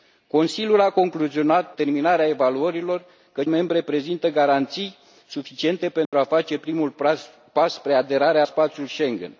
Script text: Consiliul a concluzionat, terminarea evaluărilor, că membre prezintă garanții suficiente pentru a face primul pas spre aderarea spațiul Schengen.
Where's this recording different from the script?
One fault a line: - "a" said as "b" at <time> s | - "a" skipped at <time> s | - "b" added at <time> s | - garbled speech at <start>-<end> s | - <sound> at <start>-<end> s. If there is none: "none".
- dropout at 6.1-6.1 s